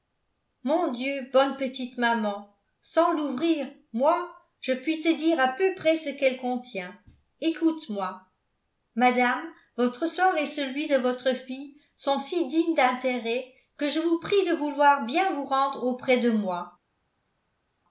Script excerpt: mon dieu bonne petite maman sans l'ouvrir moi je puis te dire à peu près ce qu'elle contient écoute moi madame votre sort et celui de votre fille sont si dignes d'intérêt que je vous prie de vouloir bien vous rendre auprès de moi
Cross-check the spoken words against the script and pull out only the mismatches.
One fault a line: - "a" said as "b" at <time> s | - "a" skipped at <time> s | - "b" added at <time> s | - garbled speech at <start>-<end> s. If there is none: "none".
none